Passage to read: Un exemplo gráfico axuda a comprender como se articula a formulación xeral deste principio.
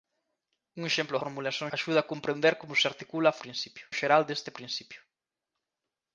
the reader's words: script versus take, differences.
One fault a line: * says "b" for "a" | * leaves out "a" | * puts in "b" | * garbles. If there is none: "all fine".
* says "formulación" for "gráfico"
* says "principio" for "formulación"